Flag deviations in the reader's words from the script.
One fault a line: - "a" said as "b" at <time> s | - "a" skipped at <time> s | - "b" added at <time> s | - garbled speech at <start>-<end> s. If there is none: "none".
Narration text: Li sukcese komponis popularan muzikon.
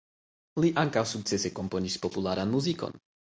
- "ankaŭ" added at 0.8 s